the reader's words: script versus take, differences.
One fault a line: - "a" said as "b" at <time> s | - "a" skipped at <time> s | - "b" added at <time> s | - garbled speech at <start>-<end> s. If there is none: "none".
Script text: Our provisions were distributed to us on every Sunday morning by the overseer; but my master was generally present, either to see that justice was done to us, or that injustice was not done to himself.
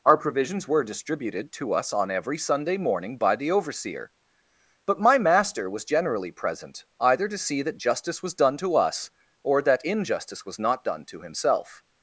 none